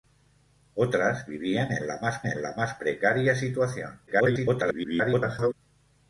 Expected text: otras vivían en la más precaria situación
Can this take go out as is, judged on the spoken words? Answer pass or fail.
fail